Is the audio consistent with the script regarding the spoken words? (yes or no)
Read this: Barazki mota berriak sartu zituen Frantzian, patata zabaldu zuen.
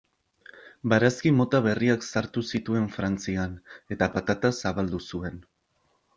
no